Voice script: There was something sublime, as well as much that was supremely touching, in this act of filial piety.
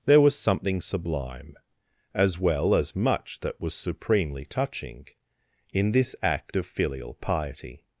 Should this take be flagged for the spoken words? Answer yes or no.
no